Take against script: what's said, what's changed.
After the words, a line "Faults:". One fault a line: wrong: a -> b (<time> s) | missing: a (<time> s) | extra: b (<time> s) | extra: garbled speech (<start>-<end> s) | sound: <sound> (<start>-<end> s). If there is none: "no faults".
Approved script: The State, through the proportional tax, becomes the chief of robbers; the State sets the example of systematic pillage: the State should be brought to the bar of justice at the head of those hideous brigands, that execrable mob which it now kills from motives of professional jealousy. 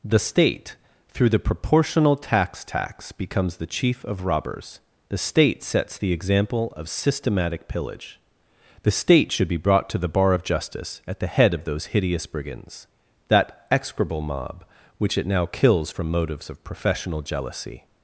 The State, through the proportional tax tax, becomes the chief of robbers; the State sets the example of systematic pillage: the State should be brought to the bar of justice at the head of those hideous brigands, that execrable mob which it now kills from motives of professional jealousy.
Faults:
extra: tax (2.6 s)